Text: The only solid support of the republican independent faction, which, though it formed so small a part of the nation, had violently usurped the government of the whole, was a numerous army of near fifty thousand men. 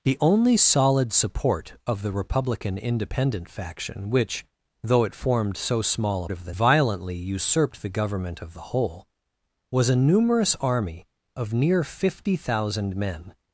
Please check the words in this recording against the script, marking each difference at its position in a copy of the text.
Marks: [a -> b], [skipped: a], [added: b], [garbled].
The only solid support of the republican independent faction, which, though it formed so small a [skipped: part] of the [skipped: nation, had] violently usurped the government of the whole, was a numerous army of near fifty thousand men.